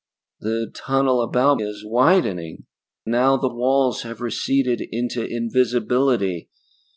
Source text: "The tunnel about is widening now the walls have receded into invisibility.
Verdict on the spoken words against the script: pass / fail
pass